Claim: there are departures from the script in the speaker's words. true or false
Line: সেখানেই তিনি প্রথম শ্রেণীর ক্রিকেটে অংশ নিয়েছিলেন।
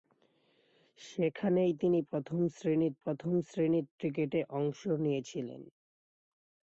true